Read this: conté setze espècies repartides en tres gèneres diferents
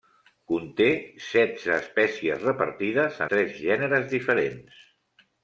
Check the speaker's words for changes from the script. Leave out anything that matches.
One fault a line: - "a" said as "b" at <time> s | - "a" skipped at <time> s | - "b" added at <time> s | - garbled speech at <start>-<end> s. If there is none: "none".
- "en" skipped at 3.2 s